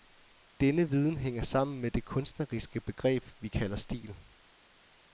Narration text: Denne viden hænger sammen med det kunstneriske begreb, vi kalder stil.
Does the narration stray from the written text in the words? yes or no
no